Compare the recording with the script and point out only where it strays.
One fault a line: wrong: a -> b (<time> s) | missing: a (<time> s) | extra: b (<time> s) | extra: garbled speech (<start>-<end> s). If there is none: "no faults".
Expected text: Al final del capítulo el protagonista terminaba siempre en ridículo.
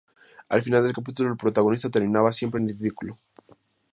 no faults